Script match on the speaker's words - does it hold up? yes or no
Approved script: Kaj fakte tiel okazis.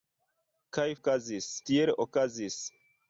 no